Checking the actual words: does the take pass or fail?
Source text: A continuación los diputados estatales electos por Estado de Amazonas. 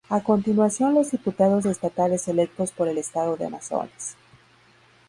fail